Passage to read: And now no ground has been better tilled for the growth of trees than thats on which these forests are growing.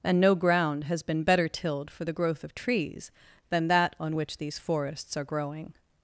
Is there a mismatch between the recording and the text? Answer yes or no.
yes